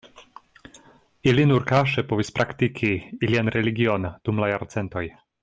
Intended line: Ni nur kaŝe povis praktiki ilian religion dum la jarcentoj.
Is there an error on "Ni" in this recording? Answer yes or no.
yes